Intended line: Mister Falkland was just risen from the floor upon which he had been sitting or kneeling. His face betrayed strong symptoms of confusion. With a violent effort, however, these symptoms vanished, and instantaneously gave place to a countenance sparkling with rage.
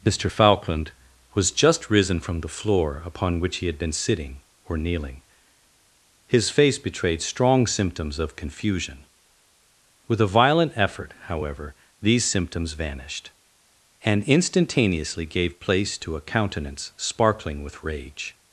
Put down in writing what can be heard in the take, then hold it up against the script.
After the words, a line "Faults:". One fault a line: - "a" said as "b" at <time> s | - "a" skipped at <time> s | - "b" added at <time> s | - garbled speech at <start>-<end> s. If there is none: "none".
Mister Falkland was just risen from the floor upon which he had been sitting or kneeling. His face betrayed strong symptoms of confusion. With a violent effort, however, these symptoms vanished, and instantaneously gave place to a countenance sparkling with rage.
Faults:
none